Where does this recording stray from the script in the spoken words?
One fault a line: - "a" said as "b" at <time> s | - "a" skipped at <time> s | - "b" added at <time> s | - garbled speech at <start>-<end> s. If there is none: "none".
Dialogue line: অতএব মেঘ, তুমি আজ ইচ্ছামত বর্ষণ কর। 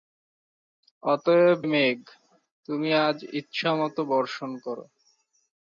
none